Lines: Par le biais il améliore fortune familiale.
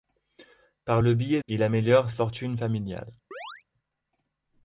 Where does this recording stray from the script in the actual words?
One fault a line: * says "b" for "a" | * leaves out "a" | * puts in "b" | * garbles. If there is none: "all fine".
all fine